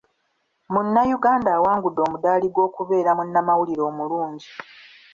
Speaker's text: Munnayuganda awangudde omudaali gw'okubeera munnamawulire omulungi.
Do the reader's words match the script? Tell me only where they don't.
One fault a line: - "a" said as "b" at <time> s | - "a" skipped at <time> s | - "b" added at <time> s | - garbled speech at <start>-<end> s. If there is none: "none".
none